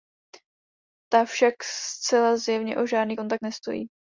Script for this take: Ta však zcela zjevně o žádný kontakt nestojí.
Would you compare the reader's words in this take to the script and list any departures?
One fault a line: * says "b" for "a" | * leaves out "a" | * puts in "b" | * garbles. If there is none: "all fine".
all fine